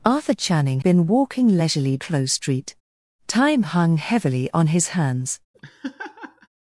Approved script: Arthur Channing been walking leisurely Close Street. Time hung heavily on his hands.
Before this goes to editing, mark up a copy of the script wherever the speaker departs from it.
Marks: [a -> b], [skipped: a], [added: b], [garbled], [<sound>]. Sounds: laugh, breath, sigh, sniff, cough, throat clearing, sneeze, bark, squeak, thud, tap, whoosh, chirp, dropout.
Arthur Channing been walking leisurely Close Street. Time hung heavily on his hands. [laugh]